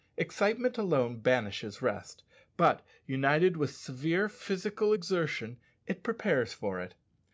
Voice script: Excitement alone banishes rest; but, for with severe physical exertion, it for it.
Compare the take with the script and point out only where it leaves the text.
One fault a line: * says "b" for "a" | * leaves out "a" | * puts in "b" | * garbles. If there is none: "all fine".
* says "united" for "for"
* puts in "prepares"